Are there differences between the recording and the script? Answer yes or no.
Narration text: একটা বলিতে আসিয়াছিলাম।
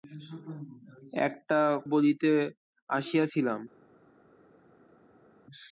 no